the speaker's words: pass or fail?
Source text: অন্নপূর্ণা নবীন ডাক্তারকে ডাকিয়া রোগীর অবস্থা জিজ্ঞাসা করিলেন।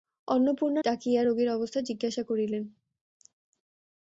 fail